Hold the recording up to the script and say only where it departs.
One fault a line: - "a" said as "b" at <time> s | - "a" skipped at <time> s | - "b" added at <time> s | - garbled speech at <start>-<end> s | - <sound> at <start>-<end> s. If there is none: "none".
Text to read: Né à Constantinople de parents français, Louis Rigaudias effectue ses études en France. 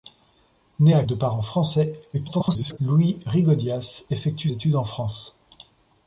- "Constantinople" skipped at 1.0 s
- garbled speech at 2.1-2.8 s
- "ses" skipped at 4.5 s